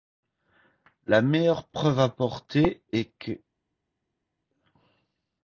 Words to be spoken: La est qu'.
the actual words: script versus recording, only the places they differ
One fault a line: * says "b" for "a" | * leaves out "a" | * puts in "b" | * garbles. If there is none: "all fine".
* puts in "meilleure preuve apportée"